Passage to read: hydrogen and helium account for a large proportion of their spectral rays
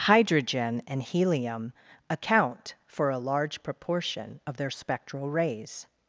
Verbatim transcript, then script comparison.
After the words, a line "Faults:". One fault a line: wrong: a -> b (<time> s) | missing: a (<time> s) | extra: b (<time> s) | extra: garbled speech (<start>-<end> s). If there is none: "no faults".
hydrogen and helium account for a large proportion of their spectral rays
Faults:
no faults